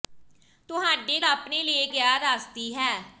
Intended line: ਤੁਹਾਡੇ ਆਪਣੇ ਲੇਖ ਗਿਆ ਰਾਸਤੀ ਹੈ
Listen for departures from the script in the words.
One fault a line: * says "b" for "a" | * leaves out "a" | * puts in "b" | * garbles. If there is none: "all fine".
all fine